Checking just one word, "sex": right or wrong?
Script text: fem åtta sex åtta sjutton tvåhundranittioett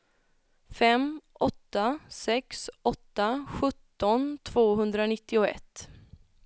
right